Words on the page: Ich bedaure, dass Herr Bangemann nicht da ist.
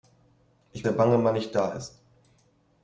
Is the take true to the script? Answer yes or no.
no